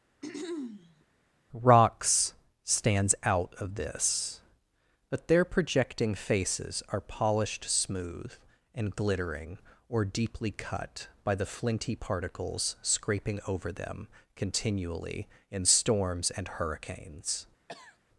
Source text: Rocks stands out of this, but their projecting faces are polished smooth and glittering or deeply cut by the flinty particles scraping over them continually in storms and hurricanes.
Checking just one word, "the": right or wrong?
right